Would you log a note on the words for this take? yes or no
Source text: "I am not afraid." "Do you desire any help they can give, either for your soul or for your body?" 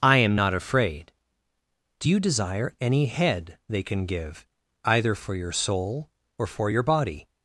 yes